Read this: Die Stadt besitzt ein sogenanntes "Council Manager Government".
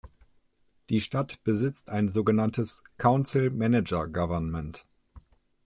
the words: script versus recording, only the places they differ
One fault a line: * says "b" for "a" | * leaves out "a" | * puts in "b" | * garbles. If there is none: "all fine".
all fine